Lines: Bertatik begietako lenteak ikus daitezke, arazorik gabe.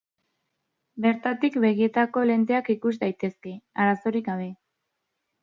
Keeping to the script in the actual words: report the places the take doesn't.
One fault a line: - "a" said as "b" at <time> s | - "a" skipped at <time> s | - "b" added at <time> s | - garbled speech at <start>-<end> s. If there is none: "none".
none